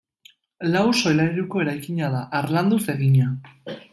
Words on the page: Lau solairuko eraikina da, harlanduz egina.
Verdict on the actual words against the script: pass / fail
pass